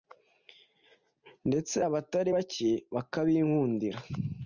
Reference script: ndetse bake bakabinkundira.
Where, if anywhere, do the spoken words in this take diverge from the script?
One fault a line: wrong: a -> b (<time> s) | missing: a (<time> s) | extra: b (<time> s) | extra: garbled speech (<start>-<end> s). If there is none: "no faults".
extra: abatari (1.9 s)